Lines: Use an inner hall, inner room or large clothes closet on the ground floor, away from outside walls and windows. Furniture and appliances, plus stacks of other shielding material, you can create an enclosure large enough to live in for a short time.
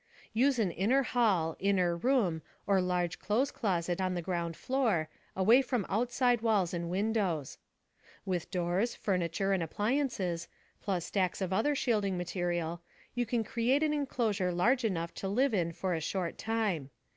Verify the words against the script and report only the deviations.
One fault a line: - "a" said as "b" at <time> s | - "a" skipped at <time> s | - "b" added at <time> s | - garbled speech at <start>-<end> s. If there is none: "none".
- "With doors" added at 8.2 s